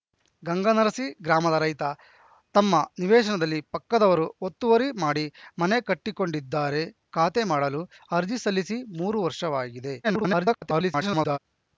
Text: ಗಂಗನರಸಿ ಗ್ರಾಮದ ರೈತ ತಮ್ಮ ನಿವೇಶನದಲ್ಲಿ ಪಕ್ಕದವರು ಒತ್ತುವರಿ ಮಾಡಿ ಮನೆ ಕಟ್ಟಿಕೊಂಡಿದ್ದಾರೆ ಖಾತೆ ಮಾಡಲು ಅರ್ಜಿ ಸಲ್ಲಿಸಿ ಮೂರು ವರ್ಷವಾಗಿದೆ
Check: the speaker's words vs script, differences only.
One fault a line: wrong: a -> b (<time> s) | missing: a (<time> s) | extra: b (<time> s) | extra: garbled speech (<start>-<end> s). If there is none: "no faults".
extra: garbled speech (10.0-11.4 s)